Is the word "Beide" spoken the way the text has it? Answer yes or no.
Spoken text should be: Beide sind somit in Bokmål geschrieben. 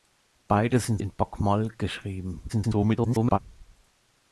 yes